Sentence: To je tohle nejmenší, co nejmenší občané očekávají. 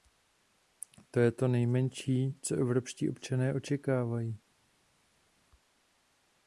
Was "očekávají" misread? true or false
false